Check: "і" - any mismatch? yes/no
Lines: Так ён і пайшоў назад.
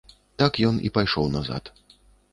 no